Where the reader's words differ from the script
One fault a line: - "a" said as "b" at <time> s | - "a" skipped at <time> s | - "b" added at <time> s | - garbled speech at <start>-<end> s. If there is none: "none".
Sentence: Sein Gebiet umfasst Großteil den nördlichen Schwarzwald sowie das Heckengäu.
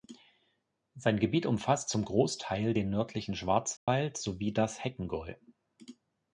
- "zum" added at 1.9 s